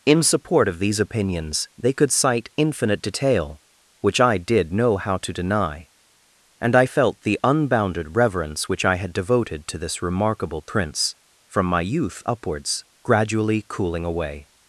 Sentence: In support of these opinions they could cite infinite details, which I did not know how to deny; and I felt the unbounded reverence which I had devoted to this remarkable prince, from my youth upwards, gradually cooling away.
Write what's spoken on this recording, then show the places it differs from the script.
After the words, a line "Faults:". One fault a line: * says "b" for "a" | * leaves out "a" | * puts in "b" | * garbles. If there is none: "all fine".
In support of these opinions they could cite infinite detail, which I did know how to deny; and I felt the unbounded reverence which I had devoted to this remarkable prince, from my youth upwards, gradually cooling away.
Faults:
* says "detail" for "details"
* leaves out "not"